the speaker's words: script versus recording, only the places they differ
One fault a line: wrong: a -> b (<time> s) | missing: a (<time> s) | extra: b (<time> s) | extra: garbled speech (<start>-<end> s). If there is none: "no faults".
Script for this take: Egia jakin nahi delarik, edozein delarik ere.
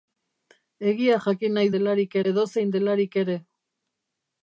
no faults